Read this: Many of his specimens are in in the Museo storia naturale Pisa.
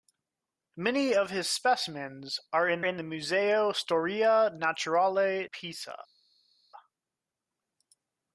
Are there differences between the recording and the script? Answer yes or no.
no